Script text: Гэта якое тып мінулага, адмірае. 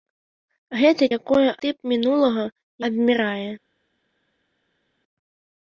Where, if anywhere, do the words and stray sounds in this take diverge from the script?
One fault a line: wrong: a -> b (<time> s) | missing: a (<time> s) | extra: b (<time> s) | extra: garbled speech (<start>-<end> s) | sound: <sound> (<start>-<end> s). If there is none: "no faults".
no faults